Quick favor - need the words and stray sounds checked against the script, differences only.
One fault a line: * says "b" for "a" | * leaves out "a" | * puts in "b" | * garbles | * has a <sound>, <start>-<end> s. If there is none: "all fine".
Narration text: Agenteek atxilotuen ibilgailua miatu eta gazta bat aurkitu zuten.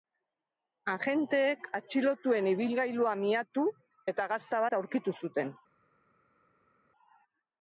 all fine